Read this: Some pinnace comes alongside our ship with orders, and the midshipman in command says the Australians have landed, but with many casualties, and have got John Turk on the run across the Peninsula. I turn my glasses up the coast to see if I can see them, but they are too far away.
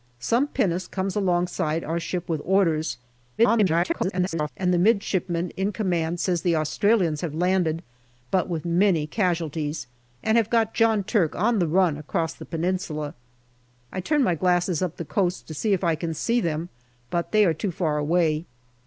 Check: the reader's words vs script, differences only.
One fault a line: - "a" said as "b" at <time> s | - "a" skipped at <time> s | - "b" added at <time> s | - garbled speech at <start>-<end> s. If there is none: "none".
- garbled speech at 3.4-4.5 s